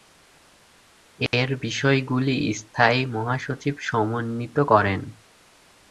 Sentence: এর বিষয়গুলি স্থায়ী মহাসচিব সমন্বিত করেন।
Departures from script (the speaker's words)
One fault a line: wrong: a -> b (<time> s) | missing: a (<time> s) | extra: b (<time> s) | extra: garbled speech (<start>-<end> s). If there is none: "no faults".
no faults